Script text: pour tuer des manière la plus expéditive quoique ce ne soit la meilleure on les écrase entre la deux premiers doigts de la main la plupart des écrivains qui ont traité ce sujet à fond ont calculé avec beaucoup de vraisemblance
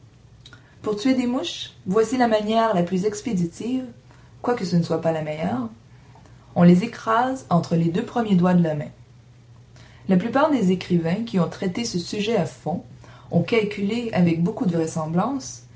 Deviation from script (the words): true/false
true